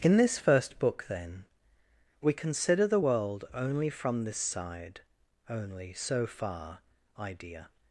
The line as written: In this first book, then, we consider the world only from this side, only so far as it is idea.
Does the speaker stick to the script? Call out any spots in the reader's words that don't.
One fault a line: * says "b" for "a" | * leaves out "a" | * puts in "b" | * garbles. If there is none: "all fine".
* leaves out "as it is"